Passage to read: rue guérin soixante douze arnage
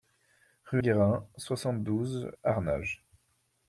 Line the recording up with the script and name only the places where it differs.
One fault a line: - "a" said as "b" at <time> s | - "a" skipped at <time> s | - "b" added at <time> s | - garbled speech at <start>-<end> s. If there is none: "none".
none